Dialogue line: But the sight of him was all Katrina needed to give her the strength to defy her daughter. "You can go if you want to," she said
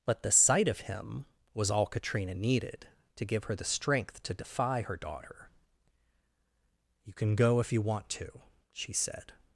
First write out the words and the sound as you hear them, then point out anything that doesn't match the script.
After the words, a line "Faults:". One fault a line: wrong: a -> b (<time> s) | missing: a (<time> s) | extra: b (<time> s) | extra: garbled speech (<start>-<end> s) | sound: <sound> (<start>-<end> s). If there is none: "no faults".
But the sight of him was all Katrina needed to give her the strength to defy her daughter. "You can go if you want to," she said
Faults:
no faults